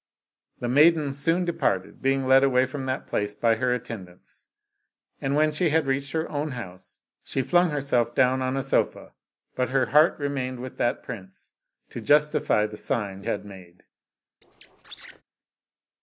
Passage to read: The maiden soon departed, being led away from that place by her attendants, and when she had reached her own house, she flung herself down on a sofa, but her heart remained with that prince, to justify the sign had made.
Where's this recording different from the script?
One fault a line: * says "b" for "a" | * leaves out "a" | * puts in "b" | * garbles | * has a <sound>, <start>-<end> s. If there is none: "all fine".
* has a squeak, 14.4-15.2 s